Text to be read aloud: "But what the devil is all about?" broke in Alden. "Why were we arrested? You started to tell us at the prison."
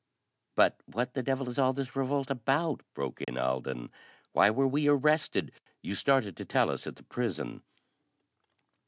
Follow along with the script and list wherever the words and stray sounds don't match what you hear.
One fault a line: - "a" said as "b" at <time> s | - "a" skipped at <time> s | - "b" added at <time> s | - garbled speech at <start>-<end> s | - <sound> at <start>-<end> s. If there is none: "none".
- "this revolt" added at 1.7 s
- dropout at 3.2-3.3 s